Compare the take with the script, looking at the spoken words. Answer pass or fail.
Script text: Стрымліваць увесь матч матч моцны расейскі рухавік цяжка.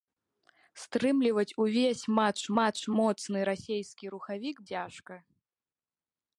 pass